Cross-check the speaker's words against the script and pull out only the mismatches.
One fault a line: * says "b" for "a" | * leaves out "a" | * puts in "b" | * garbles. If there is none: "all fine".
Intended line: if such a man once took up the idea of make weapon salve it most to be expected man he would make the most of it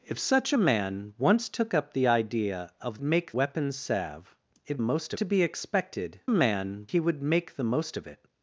all fine